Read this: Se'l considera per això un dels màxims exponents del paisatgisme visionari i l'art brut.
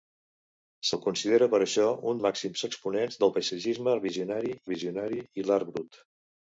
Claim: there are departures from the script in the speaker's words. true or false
true